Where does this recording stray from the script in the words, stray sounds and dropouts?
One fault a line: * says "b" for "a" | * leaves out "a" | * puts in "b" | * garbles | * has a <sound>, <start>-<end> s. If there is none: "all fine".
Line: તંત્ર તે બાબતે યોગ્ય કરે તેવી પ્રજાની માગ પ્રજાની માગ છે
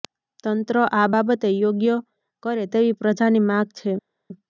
* says "આ" for "તે"
* leaves out "પ્રજાની માગ"